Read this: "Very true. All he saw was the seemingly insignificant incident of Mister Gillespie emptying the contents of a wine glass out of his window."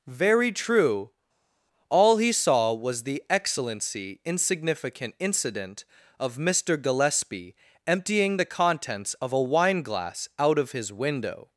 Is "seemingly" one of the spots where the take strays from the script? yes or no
yes